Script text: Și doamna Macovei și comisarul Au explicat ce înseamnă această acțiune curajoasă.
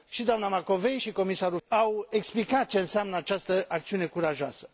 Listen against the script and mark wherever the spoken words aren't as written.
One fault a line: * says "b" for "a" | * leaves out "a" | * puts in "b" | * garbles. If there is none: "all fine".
all fine